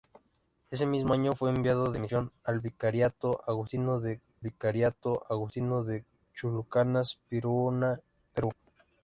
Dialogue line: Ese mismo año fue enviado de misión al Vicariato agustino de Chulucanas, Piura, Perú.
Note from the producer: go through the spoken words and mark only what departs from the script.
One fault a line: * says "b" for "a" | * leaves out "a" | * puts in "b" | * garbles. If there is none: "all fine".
* puts in "Vicariato agustino de"